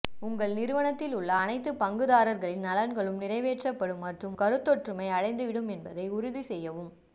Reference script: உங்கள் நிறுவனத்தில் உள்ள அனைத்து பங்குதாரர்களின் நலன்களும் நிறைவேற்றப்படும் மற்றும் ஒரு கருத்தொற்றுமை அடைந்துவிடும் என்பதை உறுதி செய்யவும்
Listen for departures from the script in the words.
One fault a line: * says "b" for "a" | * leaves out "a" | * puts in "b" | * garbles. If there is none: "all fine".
* leaves out "ஒரு"